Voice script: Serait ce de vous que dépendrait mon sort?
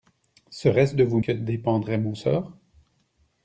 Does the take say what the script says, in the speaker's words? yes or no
yes